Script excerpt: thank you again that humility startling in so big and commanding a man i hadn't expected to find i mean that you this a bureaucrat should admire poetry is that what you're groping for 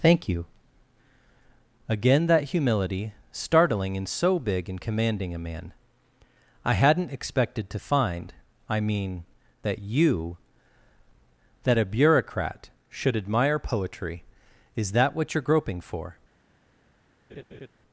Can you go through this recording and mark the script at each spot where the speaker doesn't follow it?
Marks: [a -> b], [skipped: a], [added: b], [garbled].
thank you again that humility startling in so big and commanding a man i hadn't expected to find i mean that you [this -> that] a bureaucrat should admire poetry is that what you're groping for